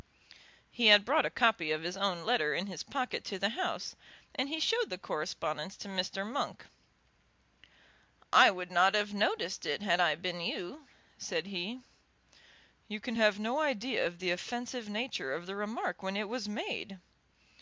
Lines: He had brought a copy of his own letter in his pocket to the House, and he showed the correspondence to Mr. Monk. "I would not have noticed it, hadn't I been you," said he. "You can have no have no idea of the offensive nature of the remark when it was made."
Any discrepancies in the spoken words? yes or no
yes